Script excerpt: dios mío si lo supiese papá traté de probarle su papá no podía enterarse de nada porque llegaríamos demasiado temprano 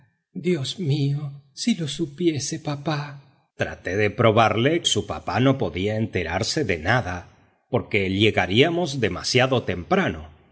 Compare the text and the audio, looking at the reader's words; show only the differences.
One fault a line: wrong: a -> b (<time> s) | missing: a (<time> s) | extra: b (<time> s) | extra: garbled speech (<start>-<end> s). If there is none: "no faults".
no faults